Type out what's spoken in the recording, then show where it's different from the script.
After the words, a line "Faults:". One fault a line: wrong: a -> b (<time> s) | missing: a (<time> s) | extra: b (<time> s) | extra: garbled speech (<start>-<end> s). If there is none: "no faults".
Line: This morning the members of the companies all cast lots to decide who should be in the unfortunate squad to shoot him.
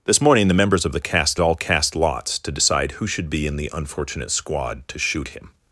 This morning the members of the cast all cast lots to decide who should be in the unfortunate squad to shoot him.
Faults:
wrong: companies -> cast (1.0 s)